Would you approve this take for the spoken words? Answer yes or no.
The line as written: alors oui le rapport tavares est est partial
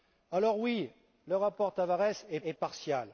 yes